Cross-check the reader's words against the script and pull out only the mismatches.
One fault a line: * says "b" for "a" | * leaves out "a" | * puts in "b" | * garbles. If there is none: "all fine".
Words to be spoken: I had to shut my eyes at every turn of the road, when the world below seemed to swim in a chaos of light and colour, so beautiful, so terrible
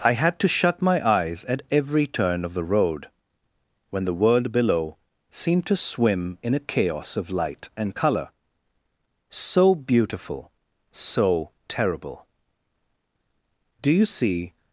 * puts in "Do you see"